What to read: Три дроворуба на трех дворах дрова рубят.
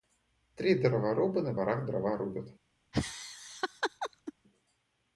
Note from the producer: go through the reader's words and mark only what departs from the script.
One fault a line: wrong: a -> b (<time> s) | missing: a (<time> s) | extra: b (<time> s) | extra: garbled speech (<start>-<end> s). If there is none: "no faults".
missing: трех (1.6 s)